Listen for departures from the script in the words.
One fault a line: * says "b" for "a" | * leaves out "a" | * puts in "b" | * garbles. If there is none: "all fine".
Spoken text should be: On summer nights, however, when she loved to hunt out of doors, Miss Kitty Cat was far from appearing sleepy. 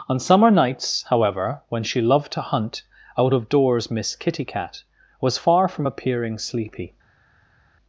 all fine